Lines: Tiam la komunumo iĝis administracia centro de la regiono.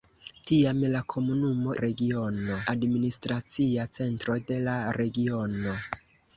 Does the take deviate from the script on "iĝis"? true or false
true